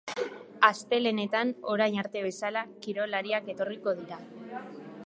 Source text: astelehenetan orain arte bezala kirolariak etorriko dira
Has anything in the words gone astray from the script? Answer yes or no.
no